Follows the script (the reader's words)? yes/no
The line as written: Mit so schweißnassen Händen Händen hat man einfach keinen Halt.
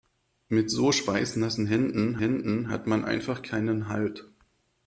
yes